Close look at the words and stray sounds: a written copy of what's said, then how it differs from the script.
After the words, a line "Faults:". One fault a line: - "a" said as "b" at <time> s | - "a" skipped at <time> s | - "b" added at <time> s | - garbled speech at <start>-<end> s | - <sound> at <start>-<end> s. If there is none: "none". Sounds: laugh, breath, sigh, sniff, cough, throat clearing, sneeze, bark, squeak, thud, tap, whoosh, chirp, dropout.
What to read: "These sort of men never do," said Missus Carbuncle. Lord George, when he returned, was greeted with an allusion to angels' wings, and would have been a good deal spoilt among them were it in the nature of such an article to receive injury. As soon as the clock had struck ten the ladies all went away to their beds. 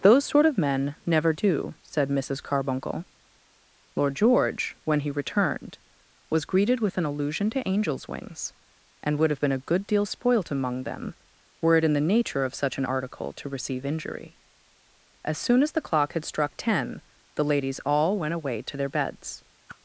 "Those sort of men never do," said Missus Carbuncle. Lord George, when he returned, was greeted with an allusion to angels' wings, and would have been a good deal spoilt among them were it in the nature of such an article to receive injury. As soon as the clock had struck ten the ladies all went away to their beds.
Faults:
- "These" said as "Those" at 0.0 s
- whoosh at 19.7-19.8 s